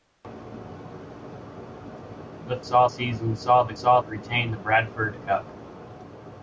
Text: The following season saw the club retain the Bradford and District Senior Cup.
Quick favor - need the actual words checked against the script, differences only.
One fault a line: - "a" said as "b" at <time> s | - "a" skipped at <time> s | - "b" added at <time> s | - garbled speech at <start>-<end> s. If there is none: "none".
- "following" said as "saw" at 2.6 s
- "club" said as "saw" at 3.7 s
- "and District Senior" skipped at 5.1 s